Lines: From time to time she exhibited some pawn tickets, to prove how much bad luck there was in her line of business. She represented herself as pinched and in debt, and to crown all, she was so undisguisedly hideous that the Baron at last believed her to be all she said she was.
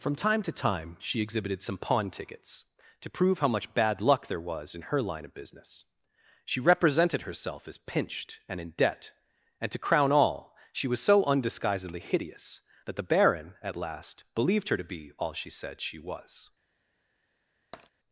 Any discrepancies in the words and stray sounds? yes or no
yes